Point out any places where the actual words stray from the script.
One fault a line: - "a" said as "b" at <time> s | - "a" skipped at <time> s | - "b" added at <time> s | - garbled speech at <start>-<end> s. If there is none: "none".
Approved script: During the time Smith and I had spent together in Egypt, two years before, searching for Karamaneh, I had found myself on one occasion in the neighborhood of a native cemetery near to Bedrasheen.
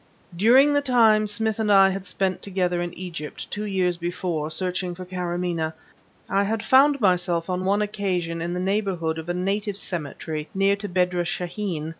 none